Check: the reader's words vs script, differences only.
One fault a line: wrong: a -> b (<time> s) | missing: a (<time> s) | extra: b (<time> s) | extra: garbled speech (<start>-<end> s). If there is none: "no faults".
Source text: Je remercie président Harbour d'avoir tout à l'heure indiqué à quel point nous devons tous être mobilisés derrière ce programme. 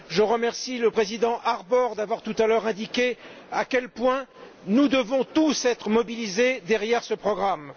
extra: le (0.8 s)